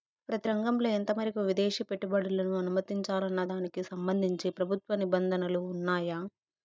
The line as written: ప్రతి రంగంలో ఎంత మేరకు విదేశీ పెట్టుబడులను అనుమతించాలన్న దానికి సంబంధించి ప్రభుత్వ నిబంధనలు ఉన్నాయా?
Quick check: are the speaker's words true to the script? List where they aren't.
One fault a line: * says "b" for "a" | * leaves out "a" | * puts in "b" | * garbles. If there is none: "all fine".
all fine